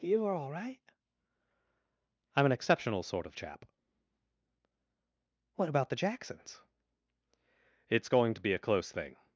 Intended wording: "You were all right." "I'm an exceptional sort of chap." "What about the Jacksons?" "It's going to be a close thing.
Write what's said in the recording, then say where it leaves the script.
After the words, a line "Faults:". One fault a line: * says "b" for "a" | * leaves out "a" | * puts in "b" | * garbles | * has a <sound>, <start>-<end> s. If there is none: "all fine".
"You are all right." "I'm an exceptional sort of chap." "What about the Jacksons?" "It's going to be a close thing.
Faults:
* says "are" for "were"